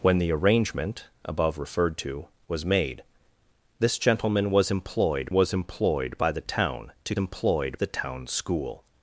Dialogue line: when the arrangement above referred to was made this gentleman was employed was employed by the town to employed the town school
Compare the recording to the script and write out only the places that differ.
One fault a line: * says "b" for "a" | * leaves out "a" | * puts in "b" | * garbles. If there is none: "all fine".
all fine